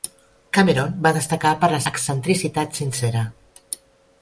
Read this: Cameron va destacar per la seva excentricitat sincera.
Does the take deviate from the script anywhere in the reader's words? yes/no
yes